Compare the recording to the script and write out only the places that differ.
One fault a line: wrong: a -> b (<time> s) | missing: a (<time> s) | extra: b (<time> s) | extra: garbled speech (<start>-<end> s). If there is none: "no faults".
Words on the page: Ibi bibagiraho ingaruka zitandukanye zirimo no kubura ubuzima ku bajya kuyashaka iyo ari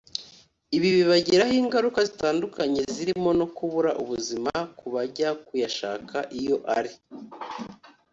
no faults